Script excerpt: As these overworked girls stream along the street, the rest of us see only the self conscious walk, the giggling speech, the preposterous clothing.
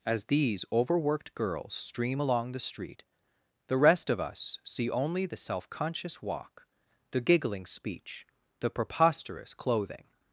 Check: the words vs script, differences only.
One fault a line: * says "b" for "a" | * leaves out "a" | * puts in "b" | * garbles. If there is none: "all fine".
all fine